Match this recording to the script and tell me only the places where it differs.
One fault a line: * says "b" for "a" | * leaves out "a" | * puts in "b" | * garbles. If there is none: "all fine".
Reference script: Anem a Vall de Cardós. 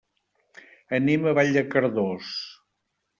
all fine